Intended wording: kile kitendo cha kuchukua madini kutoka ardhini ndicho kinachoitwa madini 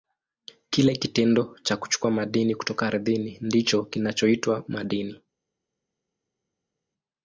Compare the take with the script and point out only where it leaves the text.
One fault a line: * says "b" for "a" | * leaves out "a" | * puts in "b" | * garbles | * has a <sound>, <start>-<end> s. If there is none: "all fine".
all fine